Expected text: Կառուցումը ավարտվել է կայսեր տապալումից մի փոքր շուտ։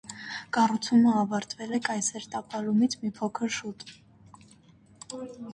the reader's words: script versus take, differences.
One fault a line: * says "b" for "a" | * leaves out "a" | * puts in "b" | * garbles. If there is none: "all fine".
all fine